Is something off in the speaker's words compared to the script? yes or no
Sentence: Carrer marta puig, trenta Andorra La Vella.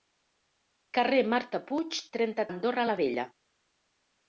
no